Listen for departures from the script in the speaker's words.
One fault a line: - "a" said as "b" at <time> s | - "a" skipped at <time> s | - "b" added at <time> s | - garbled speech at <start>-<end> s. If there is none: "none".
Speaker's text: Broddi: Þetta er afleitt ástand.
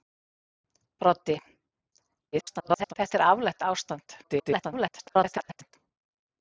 - garbled speech at 2.3-2.9 s
- garbled speech at 4.2-5.8 s